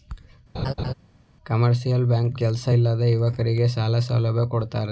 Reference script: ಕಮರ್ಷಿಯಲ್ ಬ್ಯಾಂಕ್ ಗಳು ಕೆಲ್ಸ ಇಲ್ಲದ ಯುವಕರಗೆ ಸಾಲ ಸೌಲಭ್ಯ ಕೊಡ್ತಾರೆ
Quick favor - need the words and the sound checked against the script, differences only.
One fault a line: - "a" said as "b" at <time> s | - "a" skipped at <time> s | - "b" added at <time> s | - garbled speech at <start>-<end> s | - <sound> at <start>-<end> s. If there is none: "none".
- laugh at 0.5-0.9 s
- "ಗಳು" skipped at 2.3 s